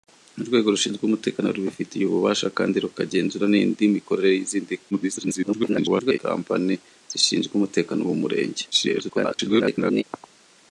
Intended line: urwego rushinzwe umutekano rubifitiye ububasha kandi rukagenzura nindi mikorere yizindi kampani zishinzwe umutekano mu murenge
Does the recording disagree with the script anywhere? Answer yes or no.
yes